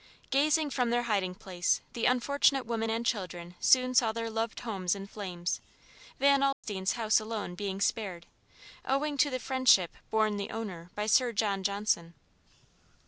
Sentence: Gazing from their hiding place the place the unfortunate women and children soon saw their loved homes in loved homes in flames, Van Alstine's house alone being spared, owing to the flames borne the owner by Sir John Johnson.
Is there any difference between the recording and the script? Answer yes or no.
yes